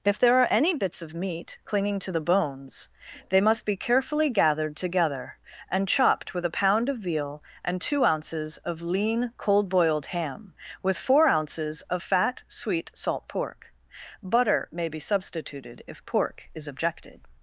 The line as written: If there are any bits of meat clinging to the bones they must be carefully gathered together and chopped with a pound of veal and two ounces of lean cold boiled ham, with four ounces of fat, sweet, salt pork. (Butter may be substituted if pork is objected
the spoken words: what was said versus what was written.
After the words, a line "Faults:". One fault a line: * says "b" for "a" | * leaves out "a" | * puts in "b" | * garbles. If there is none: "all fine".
If there are any bits of meat clinging to the bones they must be carefully gathered together and chopped with a pound of veal and two ounces of lean cold boiled ham, with four ounces of fat, sweet, salt pork. (Butter may be substituted if pork is objected
Faults:
all fine